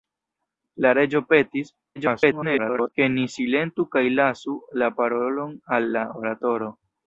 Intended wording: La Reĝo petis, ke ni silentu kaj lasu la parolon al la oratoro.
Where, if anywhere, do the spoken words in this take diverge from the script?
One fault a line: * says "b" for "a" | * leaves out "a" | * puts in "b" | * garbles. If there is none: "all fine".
* garbles